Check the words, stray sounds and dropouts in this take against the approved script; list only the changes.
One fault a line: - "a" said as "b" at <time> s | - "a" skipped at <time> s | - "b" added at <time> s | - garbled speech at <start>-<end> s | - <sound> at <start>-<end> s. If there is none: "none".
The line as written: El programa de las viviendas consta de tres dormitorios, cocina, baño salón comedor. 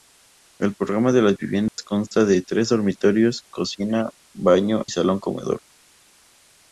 - dropout at 1.7-1.8 s